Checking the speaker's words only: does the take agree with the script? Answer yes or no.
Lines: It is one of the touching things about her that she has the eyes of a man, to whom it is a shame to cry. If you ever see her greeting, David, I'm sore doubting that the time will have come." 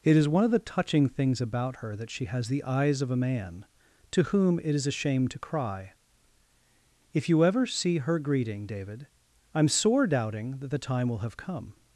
yes